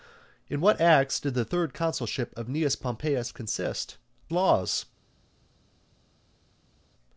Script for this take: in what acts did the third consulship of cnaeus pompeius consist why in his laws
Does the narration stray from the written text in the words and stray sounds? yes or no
yes